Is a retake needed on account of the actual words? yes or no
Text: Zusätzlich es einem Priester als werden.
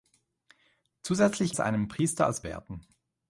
no